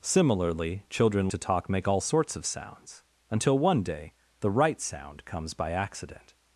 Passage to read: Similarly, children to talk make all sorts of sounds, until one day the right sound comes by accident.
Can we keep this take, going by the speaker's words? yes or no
yes